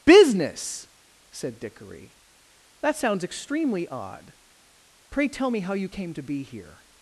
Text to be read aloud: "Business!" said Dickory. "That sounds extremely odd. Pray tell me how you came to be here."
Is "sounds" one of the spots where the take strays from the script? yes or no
no